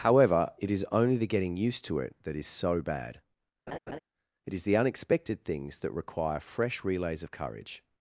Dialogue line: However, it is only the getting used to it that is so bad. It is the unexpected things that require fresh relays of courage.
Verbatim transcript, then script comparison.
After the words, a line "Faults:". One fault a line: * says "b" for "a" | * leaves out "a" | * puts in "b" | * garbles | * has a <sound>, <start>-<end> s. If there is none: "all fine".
However, it is only the getting used to it that is so bad. It is the unexpected things that require fresh relays of courage.
Faults:
* has a laugh, 3.7-4.0 s